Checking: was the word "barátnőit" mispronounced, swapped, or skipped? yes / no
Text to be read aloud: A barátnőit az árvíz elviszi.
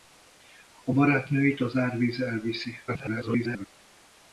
no